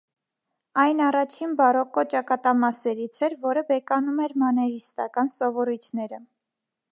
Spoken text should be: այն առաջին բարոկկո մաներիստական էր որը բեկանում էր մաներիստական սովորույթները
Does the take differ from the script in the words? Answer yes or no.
yes